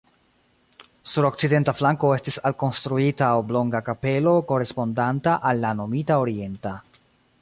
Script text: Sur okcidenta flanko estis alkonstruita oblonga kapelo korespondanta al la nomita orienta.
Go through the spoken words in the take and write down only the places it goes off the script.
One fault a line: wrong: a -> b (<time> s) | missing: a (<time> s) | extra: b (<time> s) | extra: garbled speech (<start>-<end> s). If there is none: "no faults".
no faults